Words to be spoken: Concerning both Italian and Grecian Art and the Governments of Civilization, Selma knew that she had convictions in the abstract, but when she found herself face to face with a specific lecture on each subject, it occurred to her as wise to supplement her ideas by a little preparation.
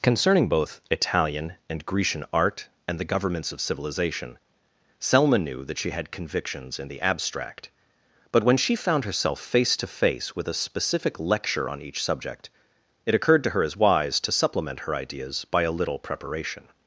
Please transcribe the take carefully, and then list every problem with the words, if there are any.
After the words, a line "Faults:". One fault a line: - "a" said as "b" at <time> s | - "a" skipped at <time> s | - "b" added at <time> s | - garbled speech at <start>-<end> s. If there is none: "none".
Concerning both Italian and Grecian Art and the Governments of Civilization, Selma knew that she had convictions in the abstract, but when she found herself face to face with a specific lecture on each subject, it occurred to her as wise to supplement her ideas by a little preparation.
Faults:
none